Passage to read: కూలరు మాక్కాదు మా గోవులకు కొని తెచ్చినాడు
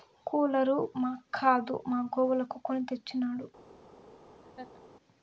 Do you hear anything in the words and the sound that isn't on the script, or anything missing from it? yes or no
yes